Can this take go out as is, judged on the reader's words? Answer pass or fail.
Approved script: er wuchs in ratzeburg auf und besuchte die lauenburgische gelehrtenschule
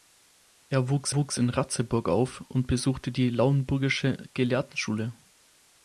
fail